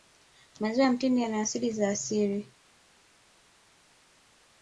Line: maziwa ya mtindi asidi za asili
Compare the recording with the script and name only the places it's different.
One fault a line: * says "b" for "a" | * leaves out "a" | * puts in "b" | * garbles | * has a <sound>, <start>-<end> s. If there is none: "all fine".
* puts in "yana"